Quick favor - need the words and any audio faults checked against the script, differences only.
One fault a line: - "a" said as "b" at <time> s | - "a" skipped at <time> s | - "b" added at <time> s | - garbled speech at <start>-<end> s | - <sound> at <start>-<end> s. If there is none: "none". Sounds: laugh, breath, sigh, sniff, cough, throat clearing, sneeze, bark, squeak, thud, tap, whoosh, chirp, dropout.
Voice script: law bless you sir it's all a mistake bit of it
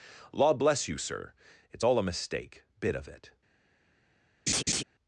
- laugh at 4.5-4.8 s